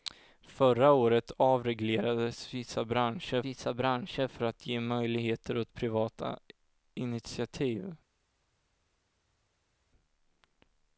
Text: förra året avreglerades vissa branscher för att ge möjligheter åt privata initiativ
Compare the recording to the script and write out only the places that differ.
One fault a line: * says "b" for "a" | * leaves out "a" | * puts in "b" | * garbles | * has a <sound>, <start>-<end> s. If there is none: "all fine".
* puts in "vissa branscher"